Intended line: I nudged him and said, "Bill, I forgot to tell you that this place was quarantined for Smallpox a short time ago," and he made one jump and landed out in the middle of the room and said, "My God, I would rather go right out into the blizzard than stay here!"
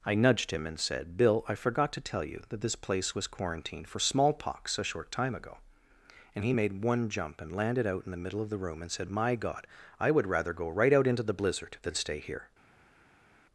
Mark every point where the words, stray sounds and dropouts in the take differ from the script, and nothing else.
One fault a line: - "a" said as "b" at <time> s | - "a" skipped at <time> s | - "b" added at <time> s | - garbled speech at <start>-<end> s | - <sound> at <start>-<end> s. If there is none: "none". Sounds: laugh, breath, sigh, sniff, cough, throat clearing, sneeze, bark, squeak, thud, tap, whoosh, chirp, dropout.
none